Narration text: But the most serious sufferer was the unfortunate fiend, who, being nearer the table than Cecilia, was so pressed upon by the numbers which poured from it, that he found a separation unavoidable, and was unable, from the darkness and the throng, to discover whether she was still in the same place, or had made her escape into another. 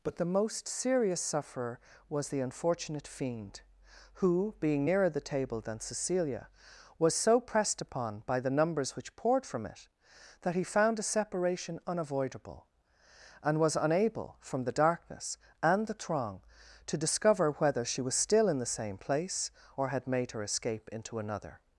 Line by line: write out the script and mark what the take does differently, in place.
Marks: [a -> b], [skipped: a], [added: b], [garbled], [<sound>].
But the most serious sufferer was the unfortunate fiend, who, being nearer the table than Cecilia, was so pressed upon by the numbers which poured from it, that he found a separation unavoidable, and was unable, from the darkness and the throng, to discover whether she was still in the same place, or had made her escape into another.